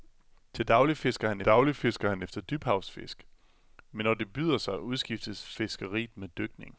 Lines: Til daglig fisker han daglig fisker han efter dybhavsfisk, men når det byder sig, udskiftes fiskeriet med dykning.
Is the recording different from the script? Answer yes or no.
no